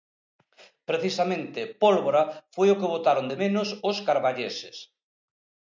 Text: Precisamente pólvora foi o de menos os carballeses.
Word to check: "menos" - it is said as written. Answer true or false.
true